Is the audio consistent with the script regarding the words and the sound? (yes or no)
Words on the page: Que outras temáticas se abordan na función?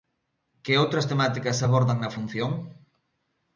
yes